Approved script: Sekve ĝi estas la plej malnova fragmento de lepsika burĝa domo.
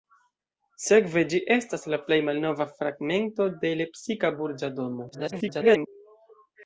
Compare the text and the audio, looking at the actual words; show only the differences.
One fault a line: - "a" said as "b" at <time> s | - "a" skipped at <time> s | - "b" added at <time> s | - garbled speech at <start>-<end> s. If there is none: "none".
- garbled speech at 5.1-5.9 s